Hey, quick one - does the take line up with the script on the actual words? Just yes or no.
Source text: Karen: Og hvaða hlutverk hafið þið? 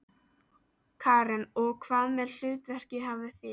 yes